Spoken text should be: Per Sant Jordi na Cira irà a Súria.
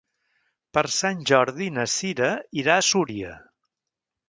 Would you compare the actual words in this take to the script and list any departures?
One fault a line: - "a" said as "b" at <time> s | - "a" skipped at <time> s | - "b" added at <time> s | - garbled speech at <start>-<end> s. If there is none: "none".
none